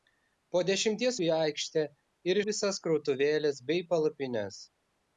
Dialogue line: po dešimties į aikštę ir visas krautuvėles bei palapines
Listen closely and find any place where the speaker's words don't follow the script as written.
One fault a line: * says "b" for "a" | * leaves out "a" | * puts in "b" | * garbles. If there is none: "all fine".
all fine